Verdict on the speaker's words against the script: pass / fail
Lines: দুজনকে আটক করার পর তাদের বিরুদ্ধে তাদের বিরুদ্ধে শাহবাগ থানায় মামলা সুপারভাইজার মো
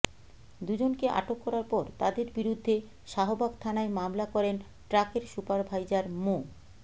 fail